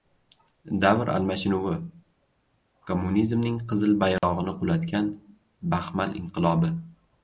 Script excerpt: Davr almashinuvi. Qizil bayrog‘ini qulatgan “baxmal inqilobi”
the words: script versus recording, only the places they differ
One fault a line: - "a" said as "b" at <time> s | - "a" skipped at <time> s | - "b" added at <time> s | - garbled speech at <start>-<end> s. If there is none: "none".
- "Kommunizmning" added at 2.9 s